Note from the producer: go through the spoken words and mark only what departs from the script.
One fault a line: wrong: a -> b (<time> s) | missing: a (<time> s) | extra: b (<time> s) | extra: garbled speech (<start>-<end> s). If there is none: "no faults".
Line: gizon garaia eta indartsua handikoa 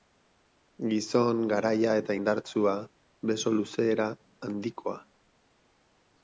extra: beso luzera (3.3 s)